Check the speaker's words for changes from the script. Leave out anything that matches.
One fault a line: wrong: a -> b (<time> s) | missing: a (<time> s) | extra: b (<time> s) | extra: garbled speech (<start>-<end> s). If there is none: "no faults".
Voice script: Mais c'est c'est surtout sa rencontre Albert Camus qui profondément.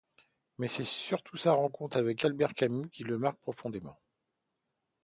missing: c'est (0.8 s)
extra: avec (2.0 s)
extra: le marque (3.0 s)